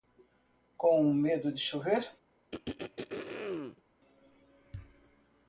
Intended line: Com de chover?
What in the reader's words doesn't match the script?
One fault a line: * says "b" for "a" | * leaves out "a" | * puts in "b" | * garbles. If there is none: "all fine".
* puts in "medo"